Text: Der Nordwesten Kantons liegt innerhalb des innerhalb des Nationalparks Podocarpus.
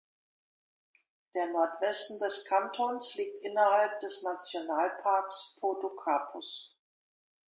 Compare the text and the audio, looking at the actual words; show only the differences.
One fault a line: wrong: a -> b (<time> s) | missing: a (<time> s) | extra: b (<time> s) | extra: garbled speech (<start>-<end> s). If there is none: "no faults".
extra: des (2.2 s)
missing: innerhalb des (4.2 s)